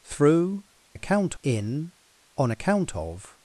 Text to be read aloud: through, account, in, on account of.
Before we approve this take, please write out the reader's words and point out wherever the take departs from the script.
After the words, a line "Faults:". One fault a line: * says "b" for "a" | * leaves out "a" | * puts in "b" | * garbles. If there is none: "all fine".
through, account, in, on account of.
Faults:
all fine